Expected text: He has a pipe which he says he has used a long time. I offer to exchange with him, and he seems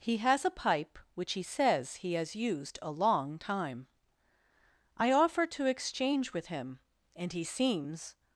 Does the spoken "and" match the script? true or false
true